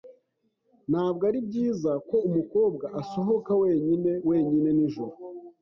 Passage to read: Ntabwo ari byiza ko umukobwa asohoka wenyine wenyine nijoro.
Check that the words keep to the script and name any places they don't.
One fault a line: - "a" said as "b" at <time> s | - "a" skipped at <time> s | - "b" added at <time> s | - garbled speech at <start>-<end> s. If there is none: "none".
none